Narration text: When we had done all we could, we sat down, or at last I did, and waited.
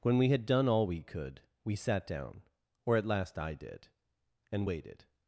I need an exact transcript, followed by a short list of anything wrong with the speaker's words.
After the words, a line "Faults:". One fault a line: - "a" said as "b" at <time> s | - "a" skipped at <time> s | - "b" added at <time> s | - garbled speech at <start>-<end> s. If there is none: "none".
When we had done all we could, we sat down, or at last I did, and waited.
Faults:
none